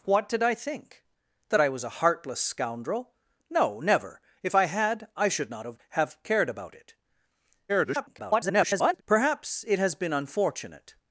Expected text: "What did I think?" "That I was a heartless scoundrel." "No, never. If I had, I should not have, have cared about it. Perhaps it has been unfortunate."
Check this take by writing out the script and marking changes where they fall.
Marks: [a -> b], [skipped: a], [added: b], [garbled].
"What did I think?" "That I was a heartless scoundrel." "No, never. If I had, I should not have, have cared about it. [garbled] Perhaps it has been unfortunate."